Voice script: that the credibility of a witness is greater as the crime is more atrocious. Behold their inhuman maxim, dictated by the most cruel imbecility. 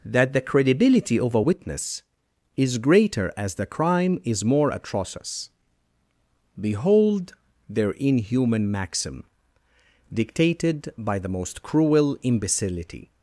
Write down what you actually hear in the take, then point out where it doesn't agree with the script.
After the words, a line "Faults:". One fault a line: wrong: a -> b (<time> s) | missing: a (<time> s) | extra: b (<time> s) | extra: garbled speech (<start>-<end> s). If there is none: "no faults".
that the credibility of a witness is greater as the crime is more atrocious. Behold their inhuman maxim, dictated by the most cruel imbecility.
Faults:
no faults